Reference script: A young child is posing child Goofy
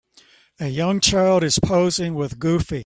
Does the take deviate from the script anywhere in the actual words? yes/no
yes